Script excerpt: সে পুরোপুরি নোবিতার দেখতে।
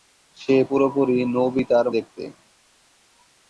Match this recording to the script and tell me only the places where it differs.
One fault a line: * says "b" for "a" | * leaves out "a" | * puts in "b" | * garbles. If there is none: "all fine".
all fine